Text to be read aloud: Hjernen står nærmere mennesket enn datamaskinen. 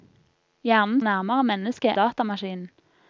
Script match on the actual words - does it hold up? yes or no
no